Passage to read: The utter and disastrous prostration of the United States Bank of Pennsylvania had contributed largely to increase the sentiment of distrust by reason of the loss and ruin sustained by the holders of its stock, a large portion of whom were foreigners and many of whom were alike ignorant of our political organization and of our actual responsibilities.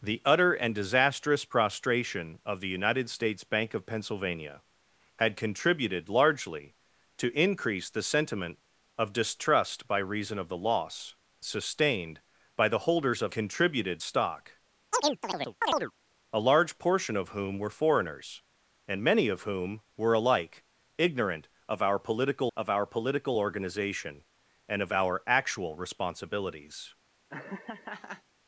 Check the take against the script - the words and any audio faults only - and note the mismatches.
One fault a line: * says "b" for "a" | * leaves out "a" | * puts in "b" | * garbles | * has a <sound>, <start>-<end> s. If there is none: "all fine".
* leaves out "and ruin"
* says "contributed" for "its"
* has a chirp, 14.9-15.9 s
* puts in "of our political"
* has a laugh, 27.3-28.2 s